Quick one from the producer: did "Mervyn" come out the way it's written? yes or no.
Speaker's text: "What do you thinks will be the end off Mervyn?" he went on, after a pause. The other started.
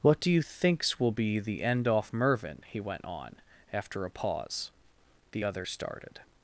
yes